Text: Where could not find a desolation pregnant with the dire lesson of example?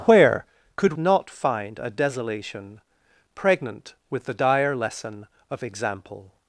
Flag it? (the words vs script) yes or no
no